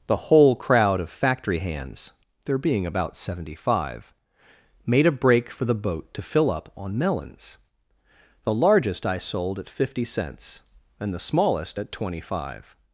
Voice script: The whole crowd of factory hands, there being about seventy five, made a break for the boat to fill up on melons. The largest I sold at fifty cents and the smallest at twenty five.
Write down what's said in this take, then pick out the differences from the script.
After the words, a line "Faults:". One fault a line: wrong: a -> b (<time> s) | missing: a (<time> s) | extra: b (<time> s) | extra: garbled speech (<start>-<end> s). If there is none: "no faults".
The whole crowd of factory hands, there being about seventy five, made a break for the boat to fill up on melons. The largest I sold at fifty cents and the smallest at twenty five.
Faults:
no faults